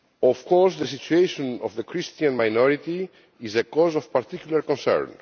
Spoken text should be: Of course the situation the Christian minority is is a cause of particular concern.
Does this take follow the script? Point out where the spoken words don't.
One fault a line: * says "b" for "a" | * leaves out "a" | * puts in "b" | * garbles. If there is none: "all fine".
* puts in "of"
* leaves out "is"